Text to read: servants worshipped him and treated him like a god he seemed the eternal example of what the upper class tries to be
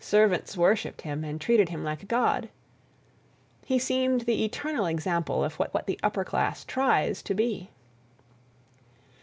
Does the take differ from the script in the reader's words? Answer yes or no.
yes